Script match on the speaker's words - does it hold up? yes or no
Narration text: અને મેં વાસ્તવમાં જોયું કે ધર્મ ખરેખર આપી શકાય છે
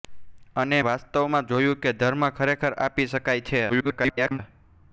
no